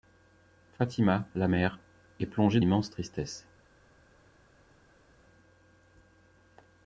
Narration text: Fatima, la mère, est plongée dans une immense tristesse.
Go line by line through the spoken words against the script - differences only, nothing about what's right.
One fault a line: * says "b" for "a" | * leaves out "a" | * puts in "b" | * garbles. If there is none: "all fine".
* leaves out "dans une"